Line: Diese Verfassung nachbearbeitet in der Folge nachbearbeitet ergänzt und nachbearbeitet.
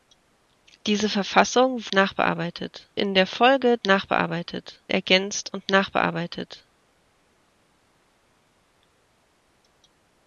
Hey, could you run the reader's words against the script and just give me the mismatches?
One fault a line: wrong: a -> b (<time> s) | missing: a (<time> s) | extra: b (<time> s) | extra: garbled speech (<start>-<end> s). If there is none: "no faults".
no faults